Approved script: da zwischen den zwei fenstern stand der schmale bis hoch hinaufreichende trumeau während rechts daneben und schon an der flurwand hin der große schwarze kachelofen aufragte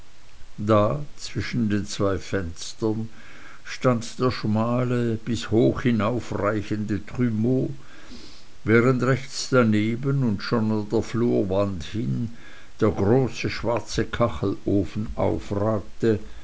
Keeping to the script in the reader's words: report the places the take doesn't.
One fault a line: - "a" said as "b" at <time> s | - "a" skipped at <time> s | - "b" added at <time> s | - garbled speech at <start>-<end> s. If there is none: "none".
none